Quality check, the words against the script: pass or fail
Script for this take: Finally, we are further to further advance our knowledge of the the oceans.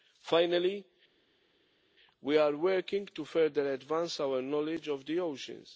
fail